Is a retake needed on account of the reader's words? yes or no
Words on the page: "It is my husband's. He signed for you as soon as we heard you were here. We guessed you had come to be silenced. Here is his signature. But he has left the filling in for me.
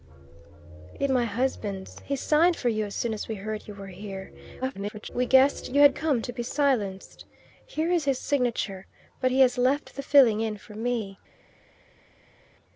yes